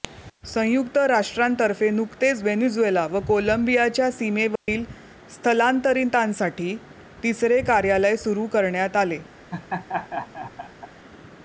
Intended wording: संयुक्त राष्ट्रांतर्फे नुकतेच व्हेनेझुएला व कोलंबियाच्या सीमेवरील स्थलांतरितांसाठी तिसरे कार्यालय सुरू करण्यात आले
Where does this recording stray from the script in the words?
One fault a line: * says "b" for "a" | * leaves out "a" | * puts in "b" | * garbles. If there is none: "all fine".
all fine